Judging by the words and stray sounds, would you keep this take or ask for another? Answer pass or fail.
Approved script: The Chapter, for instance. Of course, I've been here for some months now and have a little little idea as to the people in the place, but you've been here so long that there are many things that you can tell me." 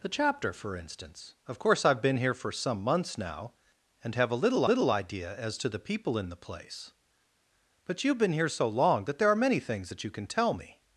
pass